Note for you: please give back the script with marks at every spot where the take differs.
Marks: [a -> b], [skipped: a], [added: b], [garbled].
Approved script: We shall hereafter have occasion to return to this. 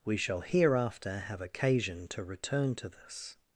We shall hereafter have occasion to return to this.